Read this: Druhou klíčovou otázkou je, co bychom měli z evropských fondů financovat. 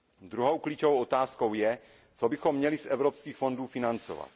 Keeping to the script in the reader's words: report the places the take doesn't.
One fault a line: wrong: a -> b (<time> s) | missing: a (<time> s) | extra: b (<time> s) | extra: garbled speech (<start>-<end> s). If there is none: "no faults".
no faults